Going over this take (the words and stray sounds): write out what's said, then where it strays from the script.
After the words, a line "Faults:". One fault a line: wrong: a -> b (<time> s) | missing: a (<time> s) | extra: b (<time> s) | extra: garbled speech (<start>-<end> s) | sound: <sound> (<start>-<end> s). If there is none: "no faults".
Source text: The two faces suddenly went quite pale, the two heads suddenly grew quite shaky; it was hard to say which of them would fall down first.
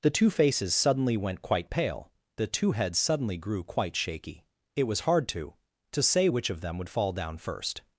The two faces suddenly went quite pale, the two heads suddenly grew quite shaky; it was hard to to say which of them would fall down first.
Faults:
extra: to (5.9 s)